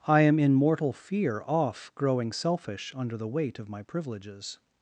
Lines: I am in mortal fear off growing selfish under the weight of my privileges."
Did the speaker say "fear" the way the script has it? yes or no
yes